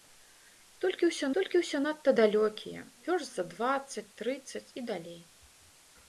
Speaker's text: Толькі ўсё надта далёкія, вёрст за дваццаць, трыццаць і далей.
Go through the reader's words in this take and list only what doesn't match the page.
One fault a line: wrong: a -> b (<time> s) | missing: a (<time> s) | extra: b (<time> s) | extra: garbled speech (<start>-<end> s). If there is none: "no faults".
extra: толькі ўсё (1.4 s)